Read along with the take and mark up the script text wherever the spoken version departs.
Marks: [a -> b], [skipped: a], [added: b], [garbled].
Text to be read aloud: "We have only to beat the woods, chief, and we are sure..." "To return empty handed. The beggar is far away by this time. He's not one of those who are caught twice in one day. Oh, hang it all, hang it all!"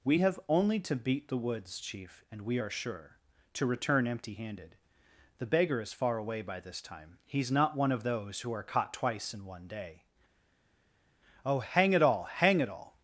"We have only to beat the woods, chief, and we are sure..." "To return empty handed. The beggar is far away by this time. He's not one of those who are caught twice in one day. Oh, hang it all, hang it all!"